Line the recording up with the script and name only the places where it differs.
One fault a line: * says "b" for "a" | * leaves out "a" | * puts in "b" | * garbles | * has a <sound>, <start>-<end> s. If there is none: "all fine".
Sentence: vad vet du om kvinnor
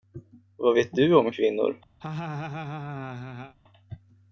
* has a laugh, 2.0-3.6 s